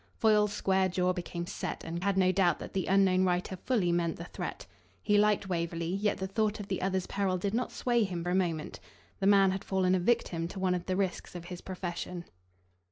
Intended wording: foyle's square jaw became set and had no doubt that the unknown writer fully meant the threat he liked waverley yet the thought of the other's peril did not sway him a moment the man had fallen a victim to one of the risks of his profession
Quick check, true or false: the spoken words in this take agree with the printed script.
true